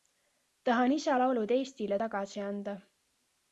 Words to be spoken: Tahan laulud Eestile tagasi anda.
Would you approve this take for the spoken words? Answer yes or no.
no